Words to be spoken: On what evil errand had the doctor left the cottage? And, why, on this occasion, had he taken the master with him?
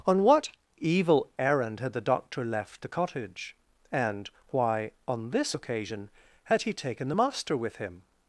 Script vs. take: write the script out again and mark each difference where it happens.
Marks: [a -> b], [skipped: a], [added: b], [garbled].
On what evil errand had the doctor left the cottage? And, why, on this occasion, had he taken the master with him?